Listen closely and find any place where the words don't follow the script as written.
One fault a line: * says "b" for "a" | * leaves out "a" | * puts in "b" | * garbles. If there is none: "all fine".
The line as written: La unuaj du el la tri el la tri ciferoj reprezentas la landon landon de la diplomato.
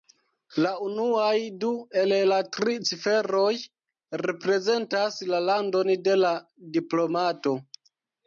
* leaves out "el la tri"
* leaves out "landon"